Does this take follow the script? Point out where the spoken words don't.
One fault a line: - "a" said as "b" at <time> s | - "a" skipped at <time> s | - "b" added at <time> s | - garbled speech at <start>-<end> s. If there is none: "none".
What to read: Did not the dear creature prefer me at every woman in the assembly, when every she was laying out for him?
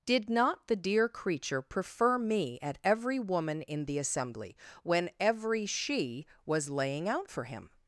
none